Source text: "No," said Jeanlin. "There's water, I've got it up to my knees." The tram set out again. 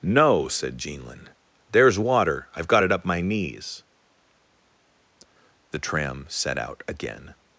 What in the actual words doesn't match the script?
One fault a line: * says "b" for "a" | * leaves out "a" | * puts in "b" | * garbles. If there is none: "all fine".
* leaves out "to"